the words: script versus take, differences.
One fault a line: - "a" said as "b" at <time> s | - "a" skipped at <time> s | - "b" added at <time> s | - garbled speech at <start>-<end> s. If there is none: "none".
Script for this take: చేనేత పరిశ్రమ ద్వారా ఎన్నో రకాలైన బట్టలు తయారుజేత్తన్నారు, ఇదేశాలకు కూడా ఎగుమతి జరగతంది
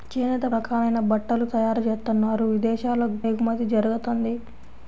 - "పరిశ్రమ ద్వారా ఎన్నో" skipped at 0.5 s
- "కూడా" skipped at 3.2 s